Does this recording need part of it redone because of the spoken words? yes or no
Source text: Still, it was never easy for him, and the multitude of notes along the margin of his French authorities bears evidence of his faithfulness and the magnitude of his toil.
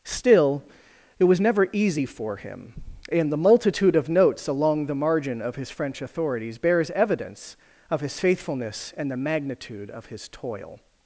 no